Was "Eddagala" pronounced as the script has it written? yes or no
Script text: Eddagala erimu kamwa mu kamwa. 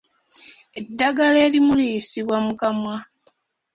yes